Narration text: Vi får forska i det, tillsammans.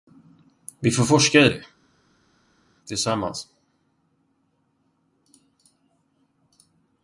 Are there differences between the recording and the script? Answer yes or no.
no